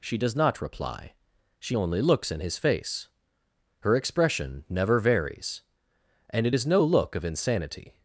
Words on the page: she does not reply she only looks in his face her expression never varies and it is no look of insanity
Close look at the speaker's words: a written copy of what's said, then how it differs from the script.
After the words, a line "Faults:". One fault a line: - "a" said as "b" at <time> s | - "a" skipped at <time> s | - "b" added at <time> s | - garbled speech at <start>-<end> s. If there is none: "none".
she does not reply she only looks in his face her expression never varies and it is no look of insanity
Faults:
none